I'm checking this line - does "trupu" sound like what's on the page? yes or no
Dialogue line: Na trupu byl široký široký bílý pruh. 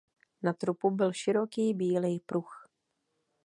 yes